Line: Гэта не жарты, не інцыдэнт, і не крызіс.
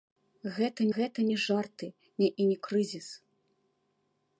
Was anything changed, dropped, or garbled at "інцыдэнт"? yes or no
yes